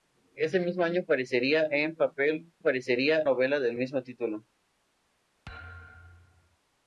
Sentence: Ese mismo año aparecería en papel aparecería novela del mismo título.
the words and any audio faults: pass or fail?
fail